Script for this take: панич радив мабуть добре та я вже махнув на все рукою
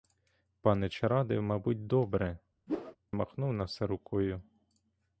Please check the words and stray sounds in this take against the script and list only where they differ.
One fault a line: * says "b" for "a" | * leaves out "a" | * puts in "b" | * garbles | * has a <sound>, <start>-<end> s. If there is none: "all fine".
* leaves out "та я вже"
* has a whoosh, 2.7-3.0 s